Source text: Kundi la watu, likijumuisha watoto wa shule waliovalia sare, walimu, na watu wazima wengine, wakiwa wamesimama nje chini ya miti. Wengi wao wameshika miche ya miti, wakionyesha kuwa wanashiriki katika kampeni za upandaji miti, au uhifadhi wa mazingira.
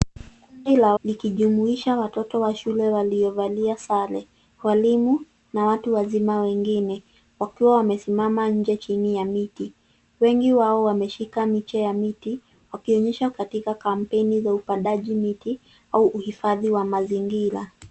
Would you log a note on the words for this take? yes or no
yes